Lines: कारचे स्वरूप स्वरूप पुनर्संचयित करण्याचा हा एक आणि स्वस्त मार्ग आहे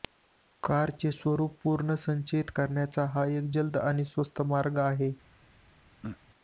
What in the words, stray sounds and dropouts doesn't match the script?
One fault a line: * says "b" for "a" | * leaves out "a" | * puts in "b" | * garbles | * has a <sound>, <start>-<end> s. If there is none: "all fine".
* leaves out "स्वरूप"
* puts in "जलद"
* has a throat clearing, 6.0-6.2 s